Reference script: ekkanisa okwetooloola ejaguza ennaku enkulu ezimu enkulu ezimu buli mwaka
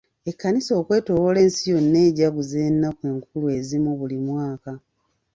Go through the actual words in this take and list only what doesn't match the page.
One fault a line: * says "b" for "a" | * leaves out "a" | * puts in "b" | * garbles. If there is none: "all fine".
* puts in "ensi yonna"
* leaves out "enkulu ezimu"